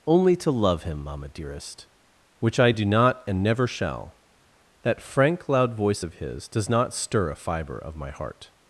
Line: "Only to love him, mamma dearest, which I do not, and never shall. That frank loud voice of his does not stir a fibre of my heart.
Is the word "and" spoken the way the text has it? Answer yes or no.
yes